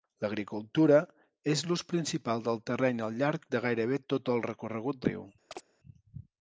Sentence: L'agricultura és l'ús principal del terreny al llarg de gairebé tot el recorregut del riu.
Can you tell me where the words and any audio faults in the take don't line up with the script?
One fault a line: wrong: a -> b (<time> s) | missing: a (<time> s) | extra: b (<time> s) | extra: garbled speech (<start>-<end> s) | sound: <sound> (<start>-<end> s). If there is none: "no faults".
missing: del (5.1 s)
sound: chirp (5.5-5.6 s)